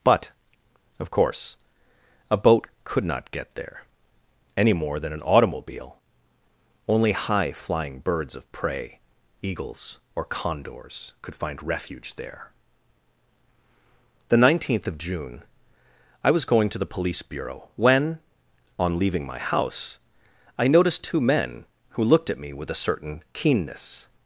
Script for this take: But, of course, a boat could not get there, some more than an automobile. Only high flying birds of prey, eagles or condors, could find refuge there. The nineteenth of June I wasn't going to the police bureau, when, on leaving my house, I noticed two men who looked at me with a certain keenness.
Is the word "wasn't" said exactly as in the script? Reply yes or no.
no